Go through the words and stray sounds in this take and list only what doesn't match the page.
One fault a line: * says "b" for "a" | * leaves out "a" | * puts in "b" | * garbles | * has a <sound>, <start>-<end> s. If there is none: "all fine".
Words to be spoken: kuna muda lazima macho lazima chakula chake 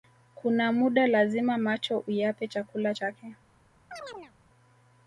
* says "uyape" for "lazima"
* has a chirp, 3.9-4.3 s